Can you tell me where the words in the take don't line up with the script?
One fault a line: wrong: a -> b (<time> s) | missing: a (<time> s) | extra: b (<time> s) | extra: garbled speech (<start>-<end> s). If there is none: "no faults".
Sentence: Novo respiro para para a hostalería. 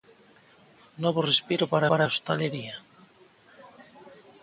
no faults